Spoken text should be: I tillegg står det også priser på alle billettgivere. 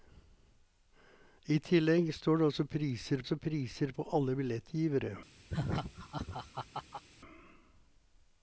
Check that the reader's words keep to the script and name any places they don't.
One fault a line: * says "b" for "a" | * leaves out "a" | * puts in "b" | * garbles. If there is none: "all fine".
* puts in "også priser"